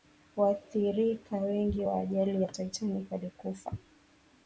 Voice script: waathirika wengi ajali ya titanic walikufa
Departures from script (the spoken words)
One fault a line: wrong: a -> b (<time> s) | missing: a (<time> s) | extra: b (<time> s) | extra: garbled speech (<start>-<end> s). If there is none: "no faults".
extra: wa (1.8 s)